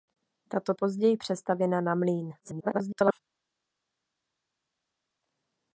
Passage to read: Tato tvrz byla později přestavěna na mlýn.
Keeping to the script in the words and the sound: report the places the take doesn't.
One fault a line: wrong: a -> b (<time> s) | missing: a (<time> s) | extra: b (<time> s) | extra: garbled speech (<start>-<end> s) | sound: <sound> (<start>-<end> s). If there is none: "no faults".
missing: tvrz byla (0.7 s)
extra: garbled speech (2.4-3.2 s)